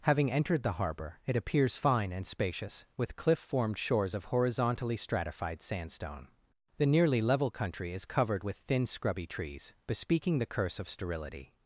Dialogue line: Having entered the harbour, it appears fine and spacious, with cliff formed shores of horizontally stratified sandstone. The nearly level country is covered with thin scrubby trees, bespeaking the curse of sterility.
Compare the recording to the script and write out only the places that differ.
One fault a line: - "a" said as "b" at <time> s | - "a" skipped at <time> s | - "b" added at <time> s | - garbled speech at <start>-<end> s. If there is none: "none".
none